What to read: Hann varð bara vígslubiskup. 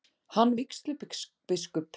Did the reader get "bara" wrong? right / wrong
wrong